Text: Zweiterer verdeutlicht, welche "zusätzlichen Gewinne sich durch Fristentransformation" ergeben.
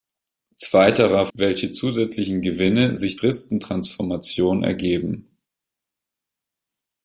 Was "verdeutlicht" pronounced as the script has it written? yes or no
no